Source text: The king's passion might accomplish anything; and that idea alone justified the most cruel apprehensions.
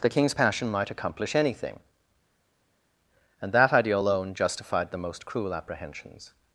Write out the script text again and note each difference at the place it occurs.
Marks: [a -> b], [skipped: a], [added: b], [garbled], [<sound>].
The king's passion might accomplish anything; and that idea alone justified the most cruel apprehensions.